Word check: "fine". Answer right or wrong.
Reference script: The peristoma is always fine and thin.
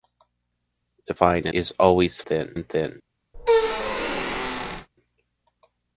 wrong